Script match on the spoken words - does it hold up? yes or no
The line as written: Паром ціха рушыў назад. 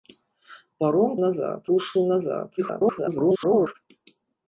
no